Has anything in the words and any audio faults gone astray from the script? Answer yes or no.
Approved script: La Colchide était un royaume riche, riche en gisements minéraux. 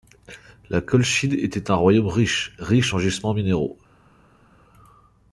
no